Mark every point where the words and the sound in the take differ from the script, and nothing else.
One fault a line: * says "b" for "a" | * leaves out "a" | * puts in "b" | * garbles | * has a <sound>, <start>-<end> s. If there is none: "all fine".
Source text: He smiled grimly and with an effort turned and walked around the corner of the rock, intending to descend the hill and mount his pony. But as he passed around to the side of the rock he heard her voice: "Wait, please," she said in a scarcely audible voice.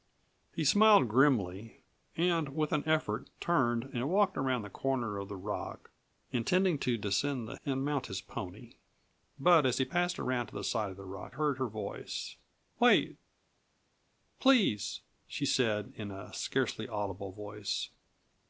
* leaves out "hill"
* leaves out "he"